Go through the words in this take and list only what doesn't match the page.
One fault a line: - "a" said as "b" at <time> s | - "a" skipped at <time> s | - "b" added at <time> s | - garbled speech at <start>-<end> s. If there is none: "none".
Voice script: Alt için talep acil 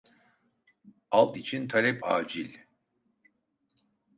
none